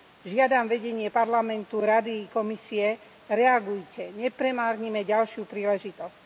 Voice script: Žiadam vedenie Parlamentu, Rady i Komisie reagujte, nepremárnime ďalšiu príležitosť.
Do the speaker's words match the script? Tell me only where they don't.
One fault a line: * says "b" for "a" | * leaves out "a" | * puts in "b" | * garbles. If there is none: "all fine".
all fine